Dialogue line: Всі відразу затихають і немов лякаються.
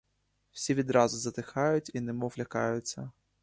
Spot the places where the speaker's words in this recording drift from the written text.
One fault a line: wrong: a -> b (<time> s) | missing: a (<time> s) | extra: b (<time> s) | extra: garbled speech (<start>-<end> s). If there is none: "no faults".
no faults